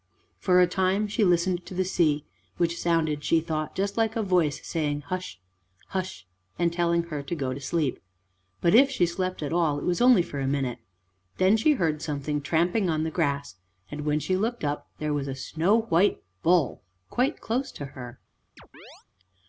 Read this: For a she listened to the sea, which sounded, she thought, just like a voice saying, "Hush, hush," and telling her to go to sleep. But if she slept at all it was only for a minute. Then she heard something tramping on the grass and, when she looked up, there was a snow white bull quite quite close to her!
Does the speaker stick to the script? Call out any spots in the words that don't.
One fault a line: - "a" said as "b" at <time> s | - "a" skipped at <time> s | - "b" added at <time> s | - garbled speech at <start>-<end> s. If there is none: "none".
- "time" added at 0.7 s
- "quite" skipped at 17.4 s